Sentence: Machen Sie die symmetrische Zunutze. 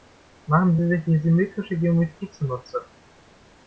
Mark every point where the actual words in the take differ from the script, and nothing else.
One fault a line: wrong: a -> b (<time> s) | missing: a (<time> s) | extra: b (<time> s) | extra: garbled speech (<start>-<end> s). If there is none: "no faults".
extra: sich (0.9 s)
extra: Geometrie (1.8 s)